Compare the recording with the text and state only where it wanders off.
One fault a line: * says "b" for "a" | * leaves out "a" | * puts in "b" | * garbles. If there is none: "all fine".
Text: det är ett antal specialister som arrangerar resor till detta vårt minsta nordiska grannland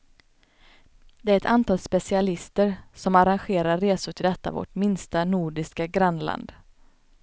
all fine